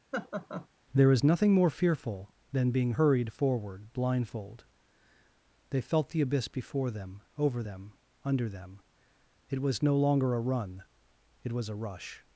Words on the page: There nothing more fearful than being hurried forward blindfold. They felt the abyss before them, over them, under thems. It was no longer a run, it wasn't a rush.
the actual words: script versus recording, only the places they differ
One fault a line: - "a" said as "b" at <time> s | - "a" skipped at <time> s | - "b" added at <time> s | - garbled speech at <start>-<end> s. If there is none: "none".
- "is" added at 1.1 s
- "thems" said as "them" at 8.5 s
- "wasn't" said as "was" at 11.5 s